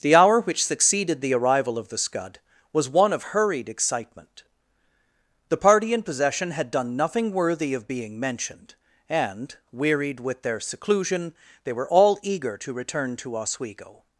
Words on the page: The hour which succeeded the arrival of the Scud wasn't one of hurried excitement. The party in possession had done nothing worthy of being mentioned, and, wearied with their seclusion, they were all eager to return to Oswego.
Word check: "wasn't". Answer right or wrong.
wrong